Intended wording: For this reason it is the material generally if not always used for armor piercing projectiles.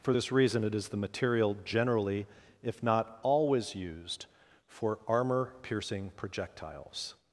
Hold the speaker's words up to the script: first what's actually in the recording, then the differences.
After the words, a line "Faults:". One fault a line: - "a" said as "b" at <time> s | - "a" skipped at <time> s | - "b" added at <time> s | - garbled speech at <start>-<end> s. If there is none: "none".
For this reason it is the material generally if not always used for armor piercing projectiles.
Faults:
none